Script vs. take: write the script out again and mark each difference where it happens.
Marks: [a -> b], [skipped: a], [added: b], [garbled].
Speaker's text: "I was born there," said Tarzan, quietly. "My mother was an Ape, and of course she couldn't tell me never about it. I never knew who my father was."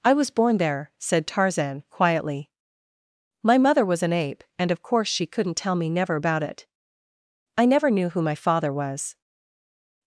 "I was born there," said Tarzan, quietly. "My mother was an Ape, and of course she couldn't tell me never about it. I never knew who my father was."